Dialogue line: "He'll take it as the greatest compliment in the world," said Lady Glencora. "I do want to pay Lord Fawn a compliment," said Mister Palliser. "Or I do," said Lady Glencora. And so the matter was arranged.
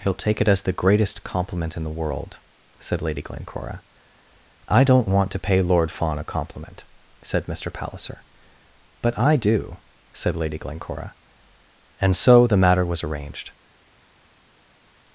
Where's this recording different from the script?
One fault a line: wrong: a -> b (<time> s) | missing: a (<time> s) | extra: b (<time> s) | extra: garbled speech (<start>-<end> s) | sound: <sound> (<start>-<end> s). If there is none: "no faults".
wrong: do -> don't (4.8 s)
wrong: Or -> But (9.0 s)